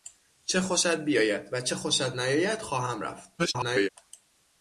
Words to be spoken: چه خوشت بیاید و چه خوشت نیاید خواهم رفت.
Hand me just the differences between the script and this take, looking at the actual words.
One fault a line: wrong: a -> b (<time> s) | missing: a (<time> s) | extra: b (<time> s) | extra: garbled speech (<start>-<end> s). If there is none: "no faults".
extra: garbled speech (3.4-3.9 s)